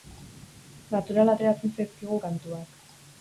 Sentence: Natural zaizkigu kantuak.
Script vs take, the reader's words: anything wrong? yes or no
yes